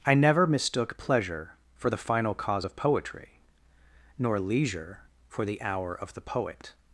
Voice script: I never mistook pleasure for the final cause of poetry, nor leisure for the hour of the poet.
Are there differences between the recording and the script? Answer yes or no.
no